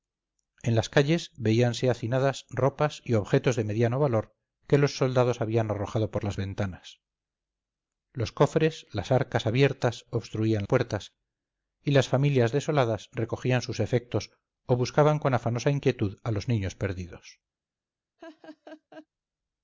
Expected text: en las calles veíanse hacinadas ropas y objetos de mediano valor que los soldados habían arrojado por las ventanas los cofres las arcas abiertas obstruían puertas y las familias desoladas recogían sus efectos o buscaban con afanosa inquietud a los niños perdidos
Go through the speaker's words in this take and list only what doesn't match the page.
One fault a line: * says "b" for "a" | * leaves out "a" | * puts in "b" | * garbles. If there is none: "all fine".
all fine